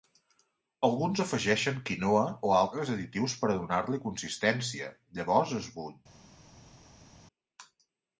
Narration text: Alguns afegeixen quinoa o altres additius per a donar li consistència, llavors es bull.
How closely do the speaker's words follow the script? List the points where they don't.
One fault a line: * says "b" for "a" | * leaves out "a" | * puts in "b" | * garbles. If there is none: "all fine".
all fine